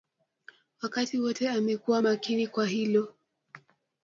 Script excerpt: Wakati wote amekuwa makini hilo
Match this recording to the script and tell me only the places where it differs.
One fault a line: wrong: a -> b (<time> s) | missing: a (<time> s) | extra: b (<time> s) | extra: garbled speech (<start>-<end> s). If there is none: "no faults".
extra: kwa (2.5 s)